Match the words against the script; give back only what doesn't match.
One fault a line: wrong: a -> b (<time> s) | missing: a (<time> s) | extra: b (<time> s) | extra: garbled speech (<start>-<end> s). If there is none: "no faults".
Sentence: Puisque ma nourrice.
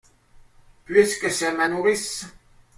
extra: c'est (1.3 s)